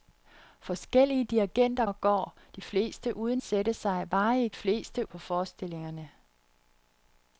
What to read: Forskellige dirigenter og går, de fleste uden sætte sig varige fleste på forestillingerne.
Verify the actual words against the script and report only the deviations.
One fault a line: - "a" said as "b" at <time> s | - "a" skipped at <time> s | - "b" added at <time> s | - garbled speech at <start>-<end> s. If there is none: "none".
none